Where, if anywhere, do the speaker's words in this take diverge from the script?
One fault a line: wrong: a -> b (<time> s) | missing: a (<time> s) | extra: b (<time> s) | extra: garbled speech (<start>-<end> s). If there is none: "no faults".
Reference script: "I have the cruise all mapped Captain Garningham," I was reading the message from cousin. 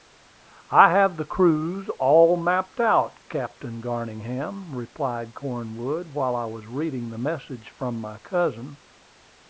extra: out (2.8 s)
extra: replied Cornwood while (4.7 s)
extra: my (8.0 s)